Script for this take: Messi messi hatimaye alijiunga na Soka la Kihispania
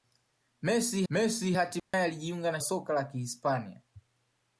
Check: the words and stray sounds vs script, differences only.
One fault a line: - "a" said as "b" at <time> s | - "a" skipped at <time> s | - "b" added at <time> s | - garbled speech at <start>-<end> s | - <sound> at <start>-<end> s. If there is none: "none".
- dropout at 1.8-1.9 s